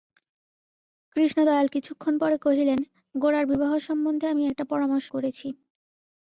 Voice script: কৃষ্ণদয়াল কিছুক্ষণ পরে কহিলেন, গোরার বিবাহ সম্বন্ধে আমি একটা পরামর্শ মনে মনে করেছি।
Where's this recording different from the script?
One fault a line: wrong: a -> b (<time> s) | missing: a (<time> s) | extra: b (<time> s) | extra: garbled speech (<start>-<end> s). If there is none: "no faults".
missing: মনে মনে (5.1 s)